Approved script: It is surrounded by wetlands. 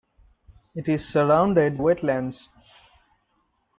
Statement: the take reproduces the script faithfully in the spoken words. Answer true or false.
false